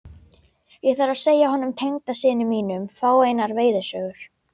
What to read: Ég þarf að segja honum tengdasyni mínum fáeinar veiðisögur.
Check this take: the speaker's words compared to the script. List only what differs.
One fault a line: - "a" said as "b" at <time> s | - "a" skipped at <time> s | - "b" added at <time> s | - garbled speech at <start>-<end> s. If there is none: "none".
none